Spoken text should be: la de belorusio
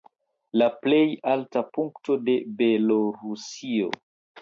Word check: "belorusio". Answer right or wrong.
right